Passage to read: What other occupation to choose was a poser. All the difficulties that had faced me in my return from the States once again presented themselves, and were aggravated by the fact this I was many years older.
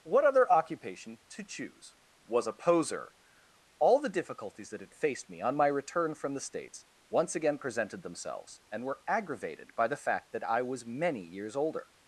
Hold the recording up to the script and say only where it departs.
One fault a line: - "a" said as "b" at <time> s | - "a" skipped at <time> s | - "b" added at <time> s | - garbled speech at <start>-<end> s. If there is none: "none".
- "in" said as "on" at 5.4 s
- "this" said as "that" at 10.3 s